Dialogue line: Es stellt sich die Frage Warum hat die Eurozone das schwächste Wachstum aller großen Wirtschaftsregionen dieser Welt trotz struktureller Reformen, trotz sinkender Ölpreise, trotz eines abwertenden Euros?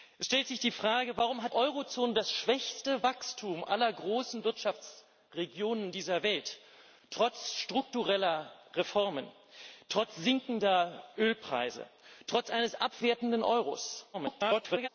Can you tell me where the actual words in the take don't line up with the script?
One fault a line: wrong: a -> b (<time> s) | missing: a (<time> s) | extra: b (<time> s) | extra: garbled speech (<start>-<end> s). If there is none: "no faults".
missing: die (1.5 s)
extra: garbled speech (14.1-14.9 s)